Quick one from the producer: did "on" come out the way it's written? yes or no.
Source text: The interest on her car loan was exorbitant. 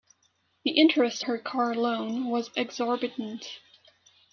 no